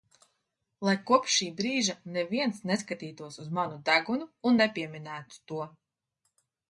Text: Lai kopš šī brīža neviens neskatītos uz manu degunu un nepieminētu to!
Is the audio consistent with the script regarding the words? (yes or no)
yes